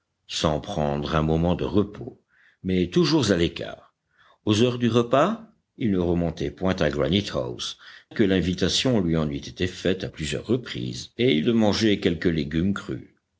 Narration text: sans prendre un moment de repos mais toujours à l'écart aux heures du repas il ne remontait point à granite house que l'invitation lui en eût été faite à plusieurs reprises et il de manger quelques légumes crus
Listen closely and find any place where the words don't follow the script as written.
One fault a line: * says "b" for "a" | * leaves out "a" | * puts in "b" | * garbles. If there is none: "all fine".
all fine